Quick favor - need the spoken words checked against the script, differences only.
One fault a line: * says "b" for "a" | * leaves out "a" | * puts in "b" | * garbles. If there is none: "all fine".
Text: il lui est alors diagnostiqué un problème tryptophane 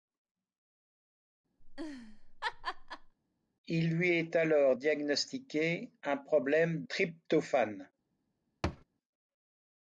all fine